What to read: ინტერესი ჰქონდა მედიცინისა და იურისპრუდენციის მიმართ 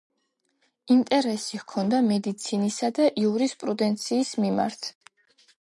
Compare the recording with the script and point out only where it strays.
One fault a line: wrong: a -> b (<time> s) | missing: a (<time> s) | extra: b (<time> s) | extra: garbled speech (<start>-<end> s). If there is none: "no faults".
no faults